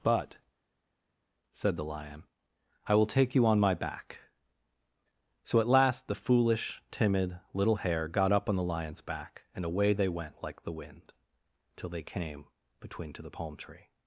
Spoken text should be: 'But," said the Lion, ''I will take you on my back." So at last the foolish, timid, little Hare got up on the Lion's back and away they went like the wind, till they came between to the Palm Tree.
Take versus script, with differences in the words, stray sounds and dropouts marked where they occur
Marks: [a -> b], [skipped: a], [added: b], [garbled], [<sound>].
'But," said the Lion, ''I will take you on my back." So at last the foolish, timid, little Hare got up on the Lion's back and away they went like the wind, till they came between to the Palm Tree.